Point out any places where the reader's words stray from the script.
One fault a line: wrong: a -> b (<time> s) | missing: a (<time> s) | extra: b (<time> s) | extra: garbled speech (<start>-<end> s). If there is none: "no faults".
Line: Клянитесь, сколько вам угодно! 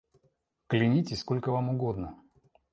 no faults